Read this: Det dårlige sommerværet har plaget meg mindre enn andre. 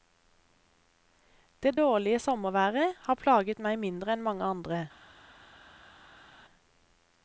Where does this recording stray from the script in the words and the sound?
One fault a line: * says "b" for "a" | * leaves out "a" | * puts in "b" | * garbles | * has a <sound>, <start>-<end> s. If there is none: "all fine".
* puts in "mange"